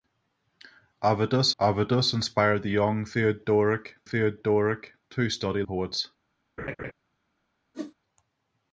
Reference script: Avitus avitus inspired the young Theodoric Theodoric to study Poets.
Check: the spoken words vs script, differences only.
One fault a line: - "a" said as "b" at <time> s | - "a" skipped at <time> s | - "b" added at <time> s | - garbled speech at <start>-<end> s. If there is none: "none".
none